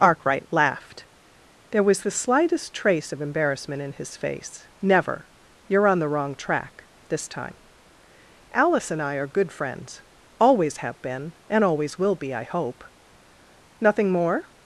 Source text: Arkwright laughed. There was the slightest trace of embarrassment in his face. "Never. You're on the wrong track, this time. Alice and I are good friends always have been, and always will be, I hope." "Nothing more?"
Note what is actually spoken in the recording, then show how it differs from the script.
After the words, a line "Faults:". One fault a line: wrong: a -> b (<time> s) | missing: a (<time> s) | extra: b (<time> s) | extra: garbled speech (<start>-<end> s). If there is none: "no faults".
Arkwright laughed. There was the slightest trace of embarrassment in his face. "Never. You're on the wrong track, this time. Alice and I are good friends always have been, and always will be, I hope." "Nothing more?"
Faults:
no faults